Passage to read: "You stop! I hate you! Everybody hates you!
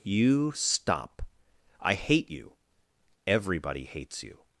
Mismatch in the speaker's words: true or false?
false